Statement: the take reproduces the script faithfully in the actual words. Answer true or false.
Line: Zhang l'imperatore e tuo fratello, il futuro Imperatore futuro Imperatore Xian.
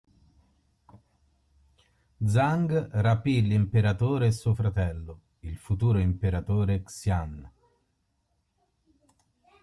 false